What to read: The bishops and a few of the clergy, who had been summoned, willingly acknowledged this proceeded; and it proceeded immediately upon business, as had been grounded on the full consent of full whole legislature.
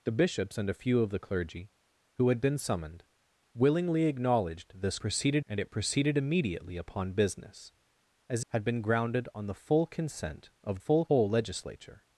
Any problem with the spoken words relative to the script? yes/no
no